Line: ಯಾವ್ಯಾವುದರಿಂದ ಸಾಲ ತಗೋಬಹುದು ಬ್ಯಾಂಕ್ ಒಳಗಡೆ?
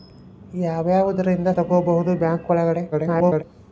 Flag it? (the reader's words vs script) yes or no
yes